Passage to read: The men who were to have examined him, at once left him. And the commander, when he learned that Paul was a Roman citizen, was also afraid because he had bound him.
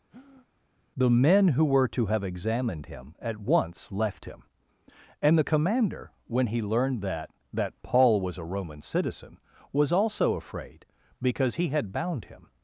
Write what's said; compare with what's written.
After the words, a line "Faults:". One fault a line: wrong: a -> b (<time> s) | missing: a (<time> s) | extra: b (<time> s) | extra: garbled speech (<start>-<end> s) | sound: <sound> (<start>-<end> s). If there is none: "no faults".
The men who were to have examined him, at once left him. And the commander, when he learned that that Paul was a Roman citizen, was also afraid because he had bound him.
Faults:
sound: breath (0.1-0.5 s)
extra: that (7.5 s)